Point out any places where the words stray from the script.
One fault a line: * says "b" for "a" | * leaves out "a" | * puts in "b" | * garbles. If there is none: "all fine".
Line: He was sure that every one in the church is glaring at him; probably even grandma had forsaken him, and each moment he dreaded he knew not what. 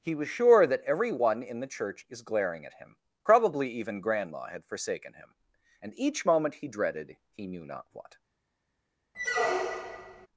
all fine